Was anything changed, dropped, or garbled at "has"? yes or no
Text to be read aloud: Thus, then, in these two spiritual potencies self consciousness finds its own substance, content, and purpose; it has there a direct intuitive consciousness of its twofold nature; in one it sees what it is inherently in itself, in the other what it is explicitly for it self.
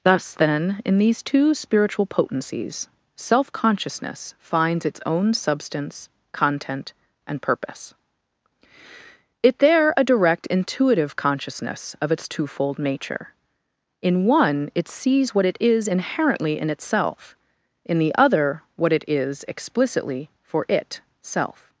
yes